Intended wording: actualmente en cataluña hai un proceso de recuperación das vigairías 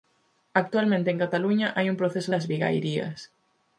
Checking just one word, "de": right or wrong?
wrong